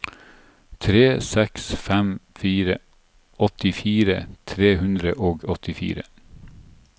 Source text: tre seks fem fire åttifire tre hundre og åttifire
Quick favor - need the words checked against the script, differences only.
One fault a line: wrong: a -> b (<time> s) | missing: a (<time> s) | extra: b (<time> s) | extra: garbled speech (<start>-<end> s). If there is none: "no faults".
no faults